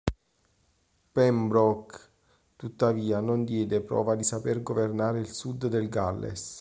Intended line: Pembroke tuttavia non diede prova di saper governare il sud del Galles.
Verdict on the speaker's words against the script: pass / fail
pass